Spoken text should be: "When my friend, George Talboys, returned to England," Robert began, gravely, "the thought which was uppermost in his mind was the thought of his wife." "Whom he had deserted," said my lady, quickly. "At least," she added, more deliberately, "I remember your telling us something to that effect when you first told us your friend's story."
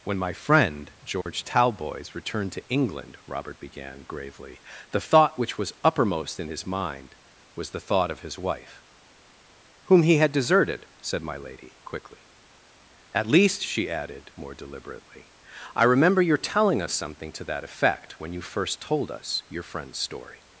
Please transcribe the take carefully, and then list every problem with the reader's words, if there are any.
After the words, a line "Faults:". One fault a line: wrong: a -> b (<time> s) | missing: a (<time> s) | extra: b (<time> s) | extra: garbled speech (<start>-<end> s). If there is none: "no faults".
"When my friend, George Talboys, returned to England," Robert began, gravely, "the thought which was uppermost in his mind was the thought of his wife." "Whom he had deserted," said my lady, quickly. "At least," she added, more deliberately, "I remember your telling us something to that effect when you first told us your friend's story."
Faults:
no faults